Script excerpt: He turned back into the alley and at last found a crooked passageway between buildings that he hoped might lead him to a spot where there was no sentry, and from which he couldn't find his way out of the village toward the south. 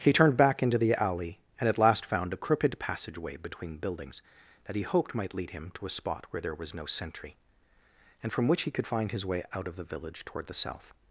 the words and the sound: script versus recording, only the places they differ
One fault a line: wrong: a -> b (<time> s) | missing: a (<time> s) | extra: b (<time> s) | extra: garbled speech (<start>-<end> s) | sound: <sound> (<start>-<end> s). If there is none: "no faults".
wrong: couldn't -> could (8.7 s)